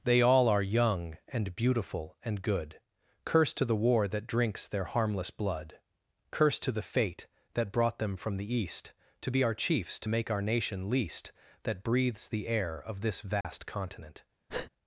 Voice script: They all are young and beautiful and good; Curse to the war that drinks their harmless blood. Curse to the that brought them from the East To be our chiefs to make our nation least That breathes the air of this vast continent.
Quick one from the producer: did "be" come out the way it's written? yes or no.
yes